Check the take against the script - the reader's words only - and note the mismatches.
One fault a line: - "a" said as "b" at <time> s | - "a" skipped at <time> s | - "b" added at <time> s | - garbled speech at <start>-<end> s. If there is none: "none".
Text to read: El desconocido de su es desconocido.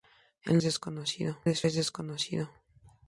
none